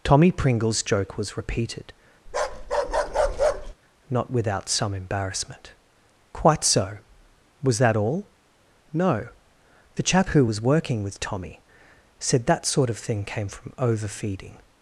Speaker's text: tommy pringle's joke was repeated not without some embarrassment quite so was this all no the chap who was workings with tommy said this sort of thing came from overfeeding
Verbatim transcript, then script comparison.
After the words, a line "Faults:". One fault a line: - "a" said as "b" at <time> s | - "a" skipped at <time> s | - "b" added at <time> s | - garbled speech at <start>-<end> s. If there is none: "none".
tommy pringle's joke was repeated not without some embarrassment quite so was that all no the chap who was working with tommy said that sort of thing came from overfeeding
Faults:
- "this" said as "that" at 7.8 s
- "workings" said as "working" at 10.6 s
- "this" said as "that" at 12.5 s